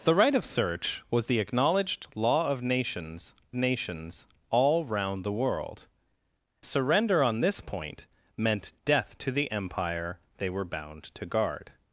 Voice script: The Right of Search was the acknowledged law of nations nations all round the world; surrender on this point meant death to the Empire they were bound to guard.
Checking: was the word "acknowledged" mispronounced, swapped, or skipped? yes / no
no